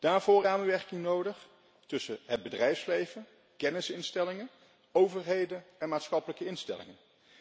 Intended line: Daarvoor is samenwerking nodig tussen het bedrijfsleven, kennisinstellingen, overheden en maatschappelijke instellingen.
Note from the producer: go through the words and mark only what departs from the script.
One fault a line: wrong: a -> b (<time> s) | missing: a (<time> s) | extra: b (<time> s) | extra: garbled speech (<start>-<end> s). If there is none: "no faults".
missing: is (0.5 s)